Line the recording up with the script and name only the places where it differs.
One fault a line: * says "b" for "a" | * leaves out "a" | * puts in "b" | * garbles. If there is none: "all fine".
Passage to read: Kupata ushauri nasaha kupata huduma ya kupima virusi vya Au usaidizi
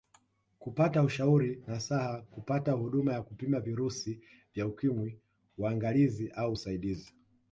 * puts in "Ukimwi uangalizi"